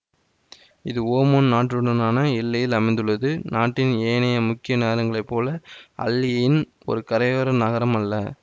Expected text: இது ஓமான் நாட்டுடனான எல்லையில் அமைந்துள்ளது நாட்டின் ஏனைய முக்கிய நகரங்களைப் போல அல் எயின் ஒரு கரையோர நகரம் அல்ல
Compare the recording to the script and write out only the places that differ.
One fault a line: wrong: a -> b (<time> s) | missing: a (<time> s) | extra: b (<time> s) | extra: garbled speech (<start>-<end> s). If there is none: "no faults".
no faults